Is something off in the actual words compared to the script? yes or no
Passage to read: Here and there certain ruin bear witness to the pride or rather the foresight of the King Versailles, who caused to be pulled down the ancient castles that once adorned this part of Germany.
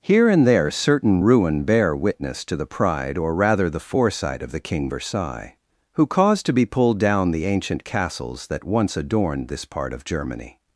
no